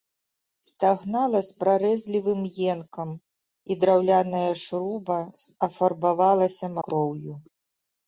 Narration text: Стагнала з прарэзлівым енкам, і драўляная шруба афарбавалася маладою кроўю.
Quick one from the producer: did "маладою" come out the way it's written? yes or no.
no